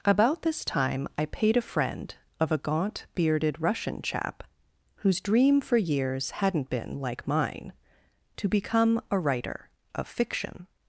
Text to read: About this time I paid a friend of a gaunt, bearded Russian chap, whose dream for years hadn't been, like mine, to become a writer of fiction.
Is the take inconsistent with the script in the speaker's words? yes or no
no